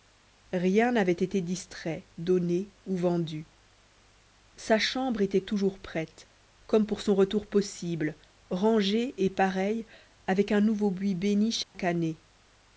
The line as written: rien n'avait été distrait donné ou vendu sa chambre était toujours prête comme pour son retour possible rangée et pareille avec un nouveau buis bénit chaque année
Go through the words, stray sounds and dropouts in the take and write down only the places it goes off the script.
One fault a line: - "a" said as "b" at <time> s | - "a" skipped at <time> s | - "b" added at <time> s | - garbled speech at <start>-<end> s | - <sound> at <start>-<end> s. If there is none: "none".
- dropout at 11.6-11.7 s